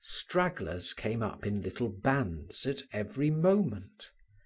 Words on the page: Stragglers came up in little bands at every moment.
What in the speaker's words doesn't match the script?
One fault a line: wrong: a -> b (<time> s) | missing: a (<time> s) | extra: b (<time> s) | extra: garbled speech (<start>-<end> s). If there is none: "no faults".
no faults